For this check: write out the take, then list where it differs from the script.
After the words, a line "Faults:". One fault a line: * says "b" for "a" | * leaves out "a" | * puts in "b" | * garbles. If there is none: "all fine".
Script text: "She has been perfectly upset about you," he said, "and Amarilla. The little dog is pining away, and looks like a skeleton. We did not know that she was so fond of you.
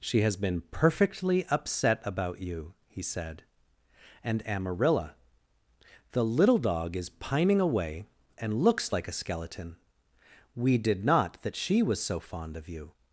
"She has been perfectly upset about you," he said, "and Amarilla. The little dog is pining away, and looks like a skeleton. We did not that she was so fond of you.
Faults:
* leaves out "know"